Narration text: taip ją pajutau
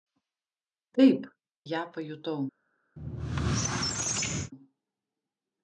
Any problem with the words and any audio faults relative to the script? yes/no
yes